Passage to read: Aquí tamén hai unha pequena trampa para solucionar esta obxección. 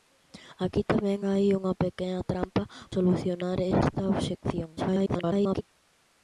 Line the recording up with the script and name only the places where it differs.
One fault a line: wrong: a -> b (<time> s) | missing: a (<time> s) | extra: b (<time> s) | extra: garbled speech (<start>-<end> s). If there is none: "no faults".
missing: para (2.6 s)
extra: garbled speech (4.8-5.6 s)